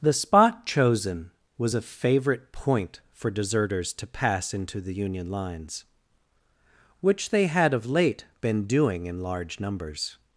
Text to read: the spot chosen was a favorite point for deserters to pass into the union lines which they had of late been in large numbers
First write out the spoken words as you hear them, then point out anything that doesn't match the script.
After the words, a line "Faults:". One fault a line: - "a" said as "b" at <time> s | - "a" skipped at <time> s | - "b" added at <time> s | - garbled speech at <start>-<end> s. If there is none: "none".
the spot chosen was a favorite point for deserters to pass into the union lines which they had of late been doing in large numbers
Faults:
- "doing" added at 8.7 s